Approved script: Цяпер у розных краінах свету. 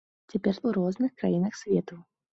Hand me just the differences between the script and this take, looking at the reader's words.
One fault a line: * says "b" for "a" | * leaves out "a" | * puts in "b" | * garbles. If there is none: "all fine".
all fine